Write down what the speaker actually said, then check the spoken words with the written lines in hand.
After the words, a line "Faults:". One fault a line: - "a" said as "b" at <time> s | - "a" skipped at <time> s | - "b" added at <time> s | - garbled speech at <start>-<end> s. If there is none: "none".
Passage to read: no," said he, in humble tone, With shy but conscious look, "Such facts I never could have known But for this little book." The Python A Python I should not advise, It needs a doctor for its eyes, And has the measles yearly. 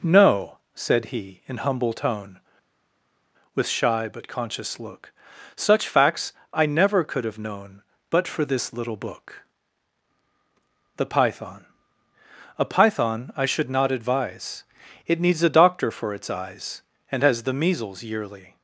no," said he, in humble tone, With shy but conscious look, "Such facts I never could have known But for this little book." The Python A Python I should not advise, It needs a doctor for its eyes, And has the measles yearly.
Faults:
none